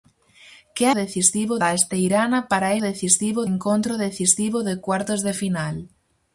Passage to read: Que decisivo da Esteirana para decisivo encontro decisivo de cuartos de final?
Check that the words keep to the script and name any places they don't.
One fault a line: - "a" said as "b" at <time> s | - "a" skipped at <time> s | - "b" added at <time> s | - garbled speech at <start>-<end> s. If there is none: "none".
none